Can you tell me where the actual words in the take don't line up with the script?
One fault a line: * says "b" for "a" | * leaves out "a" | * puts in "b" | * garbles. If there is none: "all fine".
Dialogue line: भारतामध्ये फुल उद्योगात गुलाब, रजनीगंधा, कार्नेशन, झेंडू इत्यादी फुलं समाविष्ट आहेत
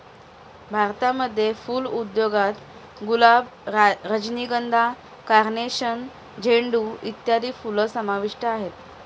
all fine